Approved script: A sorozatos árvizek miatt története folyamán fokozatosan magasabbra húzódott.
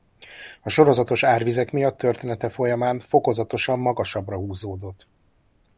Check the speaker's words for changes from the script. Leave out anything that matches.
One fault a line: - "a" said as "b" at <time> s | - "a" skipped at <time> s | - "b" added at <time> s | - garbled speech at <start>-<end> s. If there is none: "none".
none